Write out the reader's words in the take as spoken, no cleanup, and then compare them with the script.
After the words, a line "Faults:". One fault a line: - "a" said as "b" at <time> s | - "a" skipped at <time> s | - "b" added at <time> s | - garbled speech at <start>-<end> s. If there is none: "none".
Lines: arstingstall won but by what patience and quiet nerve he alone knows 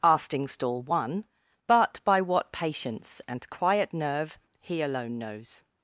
arstingstall won but by what patience and quiet nerve he alone knows
Faults:
none